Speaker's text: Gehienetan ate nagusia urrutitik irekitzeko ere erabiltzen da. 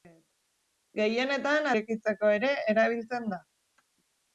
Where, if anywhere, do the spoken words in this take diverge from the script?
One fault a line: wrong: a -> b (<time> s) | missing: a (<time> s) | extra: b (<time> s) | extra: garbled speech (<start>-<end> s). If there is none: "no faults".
missing: ate nagusia urrutitik (1.7 s)